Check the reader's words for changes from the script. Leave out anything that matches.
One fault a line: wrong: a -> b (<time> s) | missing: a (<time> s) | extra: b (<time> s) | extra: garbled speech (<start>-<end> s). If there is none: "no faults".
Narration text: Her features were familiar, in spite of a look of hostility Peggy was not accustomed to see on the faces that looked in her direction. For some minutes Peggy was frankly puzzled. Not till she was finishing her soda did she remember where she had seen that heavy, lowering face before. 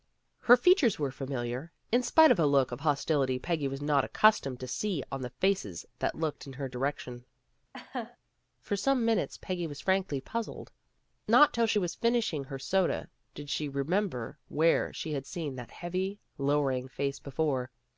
no faults